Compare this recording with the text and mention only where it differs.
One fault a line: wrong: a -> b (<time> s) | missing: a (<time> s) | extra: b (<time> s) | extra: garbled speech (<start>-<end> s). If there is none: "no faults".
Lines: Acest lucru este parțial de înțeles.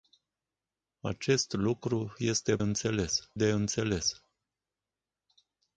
wrong: parțial -> înțeles (2.6 s)